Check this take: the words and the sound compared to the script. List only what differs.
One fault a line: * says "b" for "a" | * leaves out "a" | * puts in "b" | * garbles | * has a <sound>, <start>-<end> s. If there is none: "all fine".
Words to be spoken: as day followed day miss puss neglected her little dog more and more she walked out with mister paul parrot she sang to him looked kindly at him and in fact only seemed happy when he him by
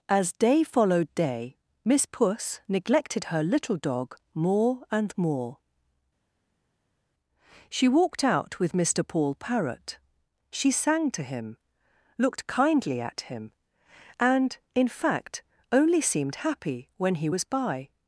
* says "was" for "him"